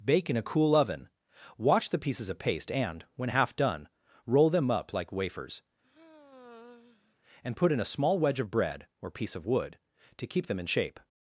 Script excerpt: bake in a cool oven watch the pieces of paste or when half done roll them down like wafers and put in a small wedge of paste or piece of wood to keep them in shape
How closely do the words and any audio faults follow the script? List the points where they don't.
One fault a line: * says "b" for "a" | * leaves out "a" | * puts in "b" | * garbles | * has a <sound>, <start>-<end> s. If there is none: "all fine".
* says "and" for "or"
* says "up" for "down"
* has a sigh, 5.8-7.2 s
* says "bread" for "paste"